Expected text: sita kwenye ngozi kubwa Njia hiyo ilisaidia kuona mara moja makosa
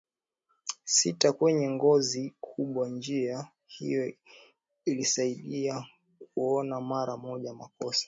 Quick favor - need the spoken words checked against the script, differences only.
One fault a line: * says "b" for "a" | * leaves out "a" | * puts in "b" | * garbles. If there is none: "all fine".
all fine